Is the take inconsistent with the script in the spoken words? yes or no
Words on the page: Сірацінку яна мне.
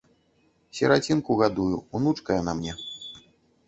yes